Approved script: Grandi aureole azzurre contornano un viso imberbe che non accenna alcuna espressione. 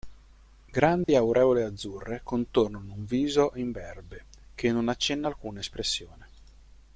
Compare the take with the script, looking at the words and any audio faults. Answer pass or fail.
fail